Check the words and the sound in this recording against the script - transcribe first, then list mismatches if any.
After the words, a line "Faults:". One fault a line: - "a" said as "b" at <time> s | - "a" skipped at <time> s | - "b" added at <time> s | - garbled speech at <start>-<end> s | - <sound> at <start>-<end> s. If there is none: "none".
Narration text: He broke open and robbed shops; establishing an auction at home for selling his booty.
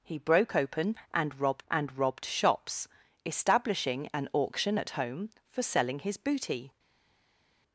He broke open and robbed and robbed shops; establishing an auction at home for selling his booty.
Faults:
- "and robbed" added at 1.7 s